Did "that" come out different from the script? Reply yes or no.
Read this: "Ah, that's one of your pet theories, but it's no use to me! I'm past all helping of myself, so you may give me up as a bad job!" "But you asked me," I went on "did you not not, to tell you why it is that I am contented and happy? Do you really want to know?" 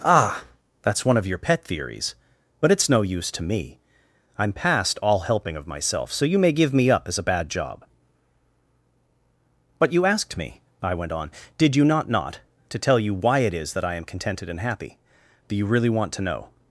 no